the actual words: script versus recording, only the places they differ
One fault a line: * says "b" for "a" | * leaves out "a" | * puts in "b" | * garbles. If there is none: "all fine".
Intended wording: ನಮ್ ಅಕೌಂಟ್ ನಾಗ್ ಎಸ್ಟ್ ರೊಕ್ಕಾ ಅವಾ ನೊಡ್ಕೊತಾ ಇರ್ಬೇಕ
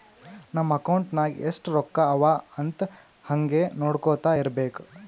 * puts in "ಅಂತ್ ಹಂಗೆ"